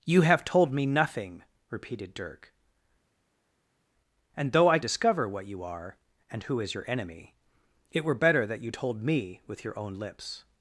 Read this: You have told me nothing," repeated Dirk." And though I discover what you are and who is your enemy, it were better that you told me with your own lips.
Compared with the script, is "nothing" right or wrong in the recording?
right